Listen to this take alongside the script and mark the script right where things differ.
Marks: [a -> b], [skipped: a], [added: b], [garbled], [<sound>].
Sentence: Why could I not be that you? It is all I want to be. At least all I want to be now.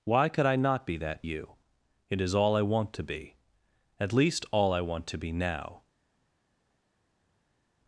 Why could I not be that you? It is all I want to be. At least all I want to be now.